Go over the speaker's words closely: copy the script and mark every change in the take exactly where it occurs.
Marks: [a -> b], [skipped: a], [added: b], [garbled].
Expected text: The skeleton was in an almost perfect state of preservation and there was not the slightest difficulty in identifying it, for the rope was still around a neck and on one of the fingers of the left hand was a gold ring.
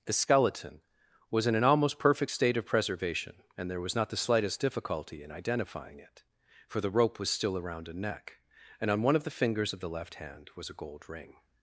The skeleton was in an almost perfect state of preservation and there was not the slightest difficulty in identifying it, for the rope was still around a neck and on one of the fingers of the left hand was a gold ring.